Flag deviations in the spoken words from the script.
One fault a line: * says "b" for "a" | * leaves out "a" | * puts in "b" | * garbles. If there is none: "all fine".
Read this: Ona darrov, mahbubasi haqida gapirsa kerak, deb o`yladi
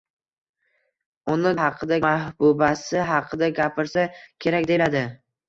* says "haqida" for "darrov"
* leaves out "deb"